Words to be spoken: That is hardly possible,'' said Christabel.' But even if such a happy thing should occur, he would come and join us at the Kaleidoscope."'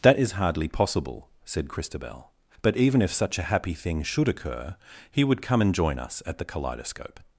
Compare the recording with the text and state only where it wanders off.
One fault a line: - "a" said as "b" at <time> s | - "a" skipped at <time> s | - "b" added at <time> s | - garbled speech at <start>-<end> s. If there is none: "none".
none